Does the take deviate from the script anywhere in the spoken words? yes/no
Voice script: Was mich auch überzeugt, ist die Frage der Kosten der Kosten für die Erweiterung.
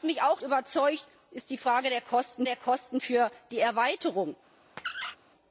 no